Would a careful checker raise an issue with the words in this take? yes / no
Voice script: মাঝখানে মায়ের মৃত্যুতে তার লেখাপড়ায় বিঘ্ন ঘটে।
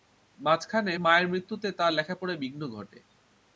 no